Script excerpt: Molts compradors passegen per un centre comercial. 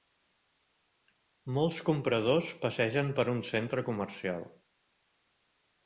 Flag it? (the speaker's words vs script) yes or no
no